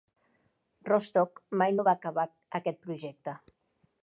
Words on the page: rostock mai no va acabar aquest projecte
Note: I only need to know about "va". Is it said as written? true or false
true